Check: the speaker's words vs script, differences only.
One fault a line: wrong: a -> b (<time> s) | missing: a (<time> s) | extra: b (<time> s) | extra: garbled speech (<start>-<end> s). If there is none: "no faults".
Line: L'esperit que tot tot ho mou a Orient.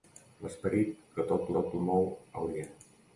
no faults